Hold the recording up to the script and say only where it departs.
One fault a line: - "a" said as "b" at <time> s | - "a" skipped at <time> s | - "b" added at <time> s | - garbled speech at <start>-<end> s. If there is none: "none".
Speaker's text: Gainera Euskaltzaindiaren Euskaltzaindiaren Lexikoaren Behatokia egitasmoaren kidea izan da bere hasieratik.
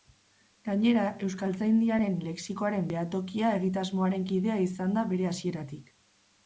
- "Euskaltzaindiaren" skipped at 2.2 s